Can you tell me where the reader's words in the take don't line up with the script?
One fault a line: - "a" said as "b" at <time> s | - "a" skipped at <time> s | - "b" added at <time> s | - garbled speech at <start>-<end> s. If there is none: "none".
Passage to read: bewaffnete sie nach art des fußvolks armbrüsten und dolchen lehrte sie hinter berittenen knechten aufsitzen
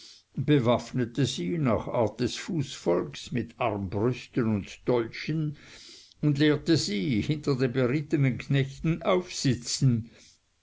- "mit" added at 3.3 s
- "und" added at 6.2 s
- "den" added at 7.6 s